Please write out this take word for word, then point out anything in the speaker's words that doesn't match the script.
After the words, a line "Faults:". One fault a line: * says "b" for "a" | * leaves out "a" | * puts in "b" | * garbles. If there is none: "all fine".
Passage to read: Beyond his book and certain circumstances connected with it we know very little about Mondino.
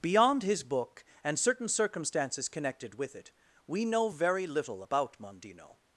Beyond his book and certain circumstances connected with it we know very little about Mondino.
Faults:
all fine